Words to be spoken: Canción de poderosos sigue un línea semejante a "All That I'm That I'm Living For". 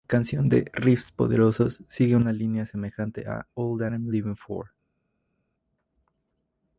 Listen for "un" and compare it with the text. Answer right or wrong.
wrong